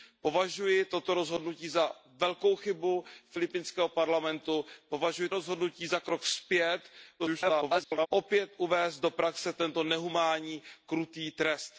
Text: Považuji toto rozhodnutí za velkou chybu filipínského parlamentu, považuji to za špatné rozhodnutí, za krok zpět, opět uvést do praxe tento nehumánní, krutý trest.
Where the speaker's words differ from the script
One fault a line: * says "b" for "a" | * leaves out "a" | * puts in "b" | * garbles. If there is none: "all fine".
* leaves out "to za špatné"
* garbles